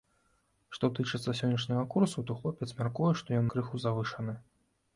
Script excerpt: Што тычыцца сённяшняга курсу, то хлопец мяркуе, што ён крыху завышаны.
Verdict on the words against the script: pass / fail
pass